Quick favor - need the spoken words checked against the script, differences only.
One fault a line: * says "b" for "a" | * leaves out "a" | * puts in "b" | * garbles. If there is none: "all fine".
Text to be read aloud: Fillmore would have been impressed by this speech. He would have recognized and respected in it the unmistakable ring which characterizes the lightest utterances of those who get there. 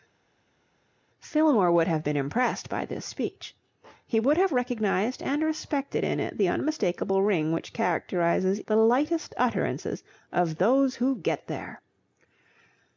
all fine